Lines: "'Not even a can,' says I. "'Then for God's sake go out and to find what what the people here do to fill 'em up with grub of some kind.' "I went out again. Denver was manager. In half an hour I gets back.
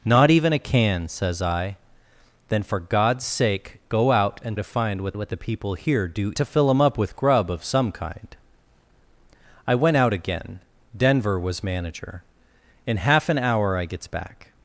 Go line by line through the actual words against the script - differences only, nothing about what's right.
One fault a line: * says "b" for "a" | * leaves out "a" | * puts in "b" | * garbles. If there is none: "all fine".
all fine